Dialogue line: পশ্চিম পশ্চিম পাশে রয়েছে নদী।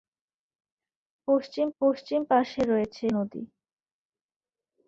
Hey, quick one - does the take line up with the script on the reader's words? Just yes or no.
yes